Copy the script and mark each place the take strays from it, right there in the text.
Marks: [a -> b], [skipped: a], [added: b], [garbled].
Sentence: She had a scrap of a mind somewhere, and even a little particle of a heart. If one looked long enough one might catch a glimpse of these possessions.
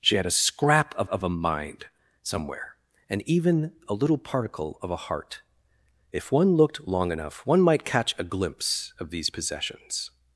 She had a scrap of [added: of] a mind somewhere, and even a little particle of a heart. If one looked long enough one might catch a glimpse of these possessions.